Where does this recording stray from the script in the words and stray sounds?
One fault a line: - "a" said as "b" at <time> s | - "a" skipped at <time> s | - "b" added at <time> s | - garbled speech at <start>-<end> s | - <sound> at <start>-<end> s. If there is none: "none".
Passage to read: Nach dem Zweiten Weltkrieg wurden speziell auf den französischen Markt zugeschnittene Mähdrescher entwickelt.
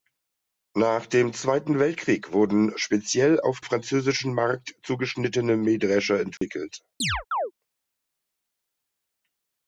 - "den" skipped at 3.6 s
- dropout at 6.4-6.4 s
- chirp at 7.0-7.5 s